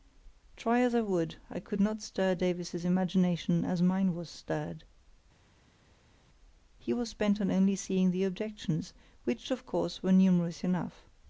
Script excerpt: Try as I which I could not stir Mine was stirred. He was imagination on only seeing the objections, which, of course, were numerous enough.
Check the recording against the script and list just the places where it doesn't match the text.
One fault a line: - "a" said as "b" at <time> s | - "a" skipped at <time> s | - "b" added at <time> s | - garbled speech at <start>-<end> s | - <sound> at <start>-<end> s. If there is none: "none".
- "which" said as "would" at 1.0 s
- "Davies's imagination as" added at 2.3 s
- "imagination" said as "bent" at 7.1 s